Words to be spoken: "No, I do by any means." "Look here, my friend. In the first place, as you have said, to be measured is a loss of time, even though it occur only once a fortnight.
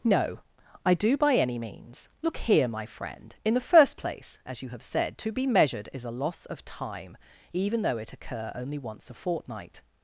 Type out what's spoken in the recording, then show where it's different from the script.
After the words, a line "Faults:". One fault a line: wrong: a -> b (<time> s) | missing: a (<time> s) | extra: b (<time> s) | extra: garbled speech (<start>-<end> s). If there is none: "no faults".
"No, I do by any means." "Look here, my friend. In the first place, as you have said, to be measured is a loss of time, even though it occur only once a fortnight.
Faults:
no faults